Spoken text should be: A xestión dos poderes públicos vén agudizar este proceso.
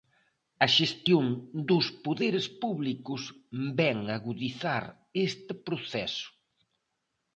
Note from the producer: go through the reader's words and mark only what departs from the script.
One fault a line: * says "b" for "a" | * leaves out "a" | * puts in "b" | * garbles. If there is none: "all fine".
all fine